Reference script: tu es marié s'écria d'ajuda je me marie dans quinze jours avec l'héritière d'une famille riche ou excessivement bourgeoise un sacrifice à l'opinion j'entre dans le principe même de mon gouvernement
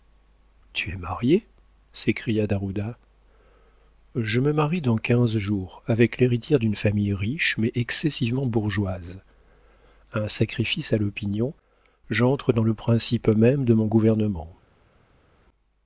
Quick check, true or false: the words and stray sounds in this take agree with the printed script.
false